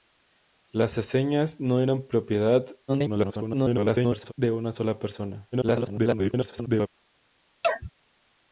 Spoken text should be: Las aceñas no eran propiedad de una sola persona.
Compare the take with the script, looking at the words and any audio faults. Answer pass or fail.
fail